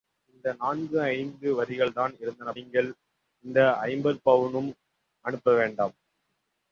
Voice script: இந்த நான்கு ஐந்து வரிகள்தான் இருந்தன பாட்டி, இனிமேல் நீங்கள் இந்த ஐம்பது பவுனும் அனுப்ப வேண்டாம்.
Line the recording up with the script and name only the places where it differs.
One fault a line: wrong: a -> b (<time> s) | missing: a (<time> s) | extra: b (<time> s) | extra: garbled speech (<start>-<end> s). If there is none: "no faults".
missing: பாட்டி இனிமேல் (2.5 s)